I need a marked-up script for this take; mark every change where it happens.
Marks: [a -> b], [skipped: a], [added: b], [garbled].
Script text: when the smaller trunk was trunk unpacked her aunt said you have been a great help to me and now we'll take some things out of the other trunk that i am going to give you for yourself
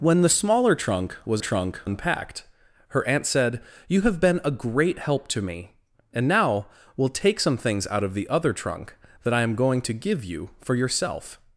when the smaller trunk was trunk unpacked her aunt said you have been a great help to me and now we'll take some things out of the other trunk that i am going to give you for yourself